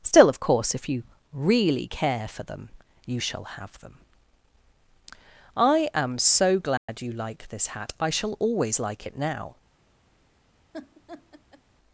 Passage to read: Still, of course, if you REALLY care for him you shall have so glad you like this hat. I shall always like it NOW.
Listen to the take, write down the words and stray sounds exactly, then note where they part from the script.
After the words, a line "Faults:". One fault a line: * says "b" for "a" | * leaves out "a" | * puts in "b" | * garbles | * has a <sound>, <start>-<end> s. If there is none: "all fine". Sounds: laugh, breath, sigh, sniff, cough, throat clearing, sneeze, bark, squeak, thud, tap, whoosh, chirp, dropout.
Still, of course, if you REALLY care for them you shall have them. I am so glad you like this hat. I shall always like it NOW.
Faults:
* says "them" for "him"
* puts in "them I am"
* has a dropout, 6.8-6.9 s
* has a laugh, 10.7-11.6 s